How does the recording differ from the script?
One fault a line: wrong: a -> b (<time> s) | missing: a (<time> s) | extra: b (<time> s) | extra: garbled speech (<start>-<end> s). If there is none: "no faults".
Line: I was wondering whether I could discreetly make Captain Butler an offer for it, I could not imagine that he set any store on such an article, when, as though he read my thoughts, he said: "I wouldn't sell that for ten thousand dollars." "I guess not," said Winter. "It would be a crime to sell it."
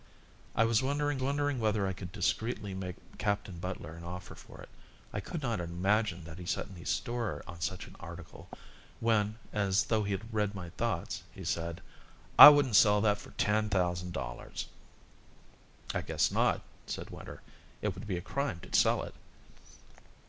extra: wondering (1.2 s)